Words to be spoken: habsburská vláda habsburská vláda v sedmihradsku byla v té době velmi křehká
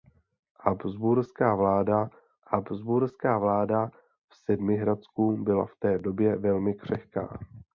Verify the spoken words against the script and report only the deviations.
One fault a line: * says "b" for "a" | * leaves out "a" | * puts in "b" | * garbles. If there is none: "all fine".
all fine